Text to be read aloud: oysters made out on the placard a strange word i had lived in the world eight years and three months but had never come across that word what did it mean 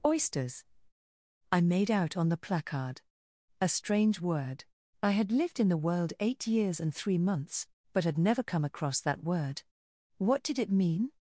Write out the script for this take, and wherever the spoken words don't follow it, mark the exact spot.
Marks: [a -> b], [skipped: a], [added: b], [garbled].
oysters [added: i] made out on the placard a strange word i had lived in the world eight years and three months but had never come across that word what did it mean